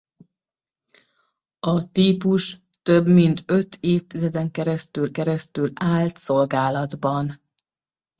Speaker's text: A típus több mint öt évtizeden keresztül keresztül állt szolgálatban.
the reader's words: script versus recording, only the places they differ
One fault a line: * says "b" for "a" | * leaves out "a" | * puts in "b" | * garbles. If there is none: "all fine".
all fine